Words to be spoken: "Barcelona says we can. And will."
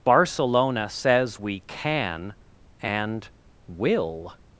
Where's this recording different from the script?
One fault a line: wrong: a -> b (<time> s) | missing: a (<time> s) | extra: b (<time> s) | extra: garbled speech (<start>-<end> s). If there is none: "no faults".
no faults